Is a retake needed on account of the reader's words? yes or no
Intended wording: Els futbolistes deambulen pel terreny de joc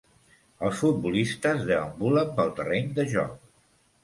no